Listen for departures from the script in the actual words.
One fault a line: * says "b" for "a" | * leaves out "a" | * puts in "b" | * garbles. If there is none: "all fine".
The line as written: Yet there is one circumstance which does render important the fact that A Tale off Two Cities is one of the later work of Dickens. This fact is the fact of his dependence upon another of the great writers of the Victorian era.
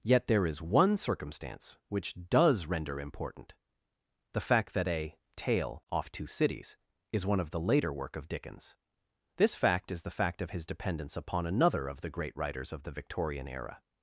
all fine